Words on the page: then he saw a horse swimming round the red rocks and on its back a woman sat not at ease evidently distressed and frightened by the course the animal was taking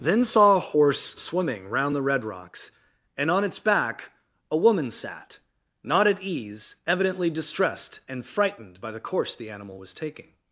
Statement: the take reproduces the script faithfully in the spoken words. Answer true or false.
false